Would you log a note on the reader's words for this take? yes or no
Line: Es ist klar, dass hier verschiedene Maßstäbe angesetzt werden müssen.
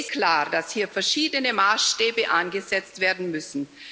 yes